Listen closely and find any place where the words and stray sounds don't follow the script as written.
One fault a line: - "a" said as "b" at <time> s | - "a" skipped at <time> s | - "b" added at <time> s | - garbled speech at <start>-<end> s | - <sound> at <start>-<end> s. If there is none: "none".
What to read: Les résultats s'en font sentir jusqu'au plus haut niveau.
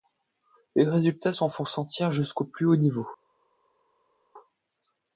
none